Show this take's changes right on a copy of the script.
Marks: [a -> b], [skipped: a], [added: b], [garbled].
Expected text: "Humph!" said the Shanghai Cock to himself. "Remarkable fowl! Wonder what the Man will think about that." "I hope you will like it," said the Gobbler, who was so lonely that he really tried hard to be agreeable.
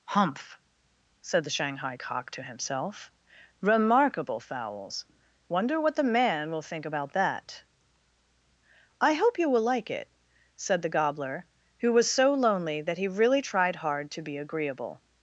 "Humph!" said the Shanghai Cock to himself. "Remarkable [fowl! -> fowls] Wonder what the Man will think about that." "I hope you will like it," said the Gobbler, who was so lonely that he really tried hard to be agreeable.